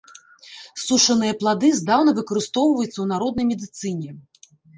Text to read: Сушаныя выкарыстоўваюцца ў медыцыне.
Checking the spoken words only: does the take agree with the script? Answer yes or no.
no